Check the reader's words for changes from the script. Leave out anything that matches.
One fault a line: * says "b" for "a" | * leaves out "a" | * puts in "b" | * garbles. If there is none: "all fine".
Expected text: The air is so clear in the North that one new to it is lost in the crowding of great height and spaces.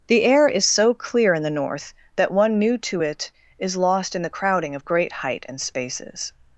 all fine